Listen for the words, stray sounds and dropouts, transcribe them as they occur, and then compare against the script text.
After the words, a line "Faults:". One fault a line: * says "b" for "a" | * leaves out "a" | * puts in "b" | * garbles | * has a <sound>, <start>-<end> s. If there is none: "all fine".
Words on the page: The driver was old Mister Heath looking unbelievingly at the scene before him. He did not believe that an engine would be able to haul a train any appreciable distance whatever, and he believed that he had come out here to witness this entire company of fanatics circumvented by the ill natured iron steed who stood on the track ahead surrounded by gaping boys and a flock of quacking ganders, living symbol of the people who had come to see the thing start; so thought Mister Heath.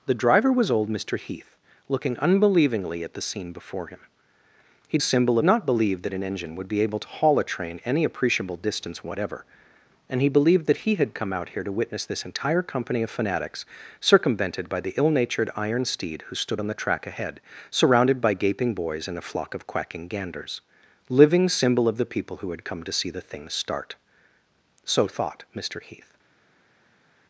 The driver was old Mister Heath looking unbelievingly at the scene before him. He symbol not believe that an engine would be able to haul a train any appreciable distance whatever, and he believed that he had come out here to witness this entire company of fanatics circumvented by the ill natured iron steed who stood on the track ahead surrounded by gaping boys and a flock of quacking ganders, living symbol of the people who had come to see the thing start; so thought Mister Heath.
Faults:
* says "symbol" for "did"